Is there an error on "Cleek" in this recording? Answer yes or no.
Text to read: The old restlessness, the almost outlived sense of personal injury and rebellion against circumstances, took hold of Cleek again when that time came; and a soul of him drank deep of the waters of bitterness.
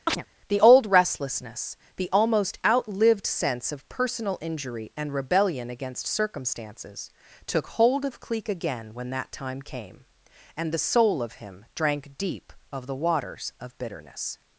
no